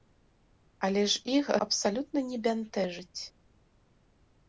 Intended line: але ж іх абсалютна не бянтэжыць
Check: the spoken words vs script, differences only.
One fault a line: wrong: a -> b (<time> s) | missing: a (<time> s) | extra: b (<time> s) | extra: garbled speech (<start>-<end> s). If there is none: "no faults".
no faults